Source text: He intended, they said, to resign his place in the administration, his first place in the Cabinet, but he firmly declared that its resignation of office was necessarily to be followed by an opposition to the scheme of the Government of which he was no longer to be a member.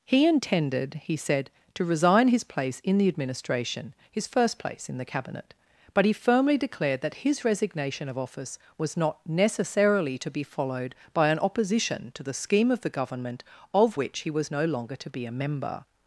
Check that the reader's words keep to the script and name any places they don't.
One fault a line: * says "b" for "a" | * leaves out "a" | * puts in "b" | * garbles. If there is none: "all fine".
* says "he" for "they"
* says "his" for "its"
* puts in "not"